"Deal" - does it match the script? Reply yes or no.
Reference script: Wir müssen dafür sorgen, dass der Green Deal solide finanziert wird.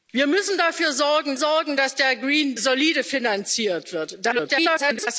no